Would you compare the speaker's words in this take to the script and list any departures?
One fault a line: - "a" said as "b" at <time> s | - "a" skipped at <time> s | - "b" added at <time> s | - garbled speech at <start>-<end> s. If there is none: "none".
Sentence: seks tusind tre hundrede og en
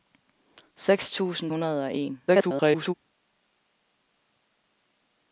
- "tre" skipped at 1.5 s
- garbled speech at 2.3-2.9 s